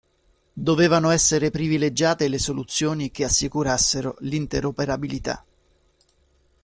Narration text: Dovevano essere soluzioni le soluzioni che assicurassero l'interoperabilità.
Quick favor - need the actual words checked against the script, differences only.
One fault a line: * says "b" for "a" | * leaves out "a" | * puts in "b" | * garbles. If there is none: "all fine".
* says "privilegiate" for "soluzioni"